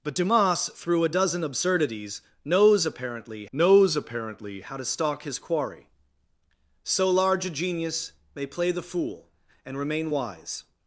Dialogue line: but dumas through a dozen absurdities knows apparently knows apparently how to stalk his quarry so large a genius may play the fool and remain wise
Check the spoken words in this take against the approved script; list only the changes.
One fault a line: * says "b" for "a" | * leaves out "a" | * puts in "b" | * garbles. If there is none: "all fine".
all fine